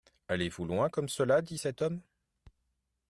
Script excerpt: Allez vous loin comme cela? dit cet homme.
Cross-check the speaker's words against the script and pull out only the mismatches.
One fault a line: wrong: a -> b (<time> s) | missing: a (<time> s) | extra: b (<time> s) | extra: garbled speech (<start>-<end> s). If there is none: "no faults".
no faults